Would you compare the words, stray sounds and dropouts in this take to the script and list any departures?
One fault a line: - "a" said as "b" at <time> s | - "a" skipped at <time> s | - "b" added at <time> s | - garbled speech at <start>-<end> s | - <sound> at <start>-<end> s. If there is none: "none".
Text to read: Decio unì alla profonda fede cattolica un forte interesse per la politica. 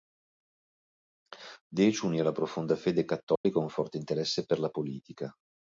- dropout at 3.4-3.4 s